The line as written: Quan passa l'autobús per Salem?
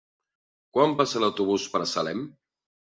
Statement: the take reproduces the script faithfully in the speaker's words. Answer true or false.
true